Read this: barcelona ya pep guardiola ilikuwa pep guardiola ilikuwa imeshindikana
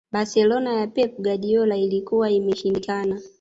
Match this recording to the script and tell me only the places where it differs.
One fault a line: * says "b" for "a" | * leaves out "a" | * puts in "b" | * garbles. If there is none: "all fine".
* leaves out "pep guardiola ilikuwa"